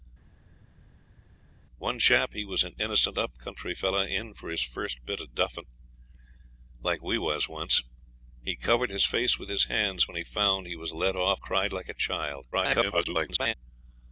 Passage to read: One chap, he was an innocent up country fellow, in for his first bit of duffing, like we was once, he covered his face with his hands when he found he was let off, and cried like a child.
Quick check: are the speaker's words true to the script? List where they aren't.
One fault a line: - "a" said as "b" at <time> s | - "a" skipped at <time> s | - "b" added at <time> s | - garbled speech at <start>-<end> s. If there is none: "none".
- "and" skipped at 11.4 s
- garbled speech at 12.5-13.5 s